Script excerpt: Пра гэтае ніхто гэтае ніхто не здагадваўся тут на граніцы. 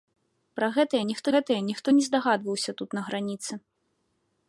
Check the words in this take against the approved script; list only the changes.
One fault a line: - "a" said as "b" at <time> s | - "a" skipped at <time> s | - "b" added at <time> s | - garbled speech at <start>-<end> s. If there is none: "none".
none